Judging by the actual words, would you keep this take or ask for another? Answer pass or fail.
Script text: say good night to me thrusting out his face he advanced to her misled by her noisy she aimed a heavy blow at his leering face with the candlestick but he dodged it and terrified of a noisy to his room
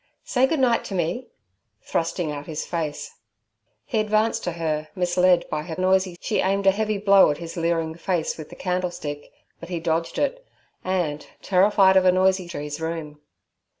pass